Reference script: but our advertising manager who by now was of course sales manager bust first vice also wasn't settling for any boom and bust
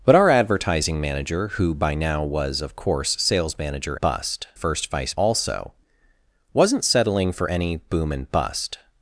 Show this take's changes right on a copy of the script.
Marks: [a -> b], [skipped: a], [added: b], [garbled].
but our advertising manager who by now was of course sales manager bust first vice also wasn't settling for any boom and bust